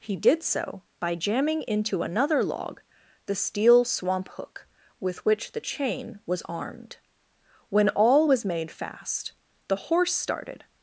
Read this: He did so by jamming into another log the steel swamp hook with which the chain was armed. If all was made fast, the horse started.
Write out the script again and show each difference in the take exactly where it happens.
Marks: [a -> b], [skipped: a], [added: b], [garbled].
He did so by jamming into another log the steel swamp hook with which the chain was armed. [If -> When] all was made fast, the horse started.